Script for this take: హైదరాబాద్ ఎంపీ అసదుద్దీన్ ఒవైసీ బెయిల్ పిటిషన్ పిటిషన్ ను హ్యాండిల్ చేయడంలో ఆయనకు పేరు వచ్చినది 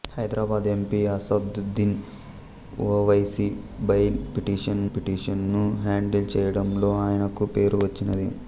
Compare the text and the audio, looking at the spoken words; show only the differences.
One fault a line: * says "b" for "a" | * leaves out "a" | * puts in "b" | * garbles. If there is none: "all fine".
all fine